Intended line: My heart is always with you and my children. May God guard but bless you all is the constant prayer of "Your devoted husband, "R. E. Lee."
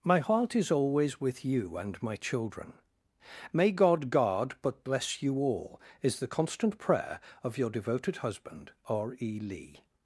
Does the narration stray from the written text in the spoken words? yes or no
no